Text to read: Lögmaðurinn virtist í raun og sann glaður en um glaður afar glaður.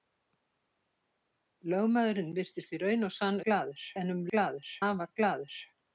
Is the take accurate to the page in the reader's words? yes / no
yes